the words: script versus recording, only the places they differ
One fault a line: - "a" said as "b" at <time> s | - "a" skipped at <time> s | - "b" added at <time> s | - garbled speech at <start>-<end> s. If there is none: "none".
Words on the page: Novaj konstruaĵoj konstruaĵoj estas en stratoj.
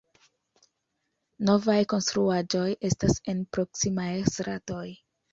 - "konstruaĵoj" skipped at 2.7 s
- "proksimaj" added at 3.6 s